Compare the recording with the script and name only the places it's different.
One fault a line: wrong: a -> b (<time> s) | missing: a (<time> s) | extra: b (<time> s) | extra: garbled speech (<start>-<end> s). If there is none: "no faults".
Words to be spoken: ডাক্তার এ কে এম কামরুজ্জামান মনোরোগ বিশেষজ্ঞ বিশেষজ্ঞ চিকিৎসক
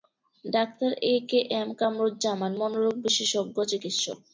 missing: বিশেষজ্ঞ (3.6 s)